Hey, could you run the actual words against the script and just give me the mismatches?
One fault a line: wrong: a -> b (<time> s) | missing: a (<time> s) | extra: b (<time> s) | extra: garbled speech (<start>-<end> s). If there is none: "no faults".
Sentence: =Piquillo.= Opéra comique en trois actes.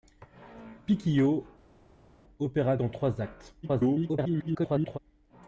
missing: comique (2.8 s)
extra: garbled speech (3.6-5.0 s)